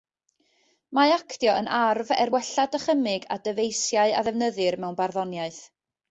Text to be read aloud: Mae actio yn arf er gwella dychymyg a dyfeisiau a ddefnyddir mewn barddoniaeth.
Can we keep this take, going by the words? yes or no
yes